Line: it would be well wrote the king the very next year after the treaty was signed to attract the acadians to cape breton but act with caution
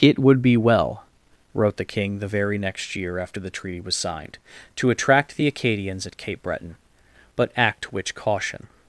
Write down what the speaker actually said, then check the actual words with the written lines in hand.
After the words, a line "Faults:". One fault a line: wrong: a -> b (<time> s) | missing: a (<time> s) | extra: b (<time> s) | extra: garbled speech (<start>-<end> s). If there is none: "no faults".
it would be well wrote the king the very next year after the treaty was signed to attract the acadians at cape breton but act which caution
Faults:
wrong: to -> at (6.1 s)
wrong: with -> which (7.9 s)